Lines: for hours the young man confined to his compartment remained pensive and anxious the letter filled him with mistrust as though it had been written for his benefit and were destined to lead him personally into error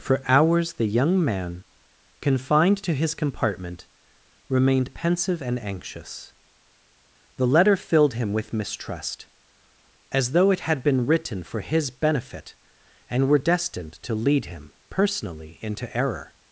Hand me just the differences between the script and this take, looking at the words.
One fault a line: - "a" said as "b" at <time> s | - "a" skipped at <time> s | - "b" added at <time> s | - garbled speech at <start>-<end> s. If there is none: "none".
none